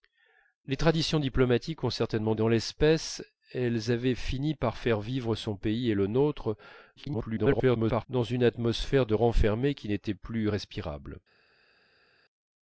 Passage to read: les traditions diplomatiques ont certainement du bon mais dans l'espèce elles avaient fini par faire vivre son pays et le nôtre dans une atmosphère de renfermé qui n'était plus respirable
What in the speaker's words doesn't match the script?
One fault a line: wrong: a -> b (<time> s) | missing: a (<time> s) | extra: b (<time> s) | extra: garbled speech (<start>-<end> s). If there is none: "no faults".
missing: du bon mais (2.3 s)
extra: garbled speech (7.0-8.1 s)